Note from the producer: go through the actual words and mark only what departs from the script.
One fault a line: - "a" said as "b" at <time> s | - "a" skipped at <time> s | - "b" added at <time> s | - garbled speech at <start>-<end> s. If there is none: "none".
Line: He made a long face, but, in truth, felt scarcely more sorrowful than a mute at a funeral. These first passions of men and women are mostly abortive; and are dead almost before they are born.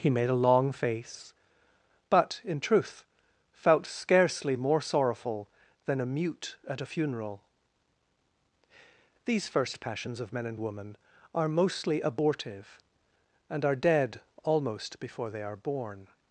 none